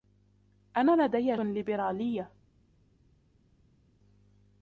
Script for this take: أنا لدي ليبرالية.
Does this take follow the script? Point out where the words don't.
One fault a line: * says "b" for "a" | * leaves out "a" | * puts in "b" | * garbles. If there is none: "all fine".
all fine